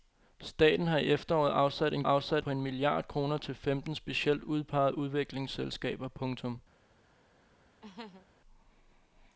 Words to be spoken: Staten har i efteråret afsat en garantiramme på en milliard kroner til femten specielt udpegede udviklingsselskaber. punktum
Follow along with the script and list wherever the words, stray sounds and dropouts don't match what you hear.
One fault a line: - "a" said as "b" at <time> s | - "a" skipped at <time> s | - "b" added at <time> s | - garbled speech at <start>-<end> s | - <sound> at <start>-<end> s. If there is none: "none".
- "garantiramme" said as "afsat" at 2.0 s
- laugh at 7.8-8.3 s